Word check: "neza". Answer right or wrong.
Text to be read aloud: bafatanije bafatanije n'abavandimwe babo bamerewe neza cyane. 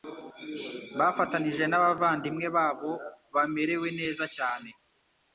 right